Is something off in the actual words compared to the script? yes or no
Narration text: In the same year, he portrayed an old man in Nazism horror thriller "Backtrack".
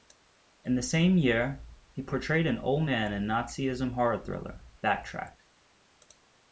no